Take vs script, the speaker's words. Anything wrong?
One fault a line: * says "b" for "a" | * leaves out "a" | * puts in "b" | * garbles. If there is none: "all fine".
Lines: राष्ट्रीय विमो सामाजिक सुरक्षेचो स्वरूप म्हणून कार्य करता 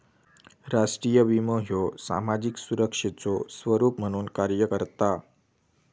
* puts in "ह्यो"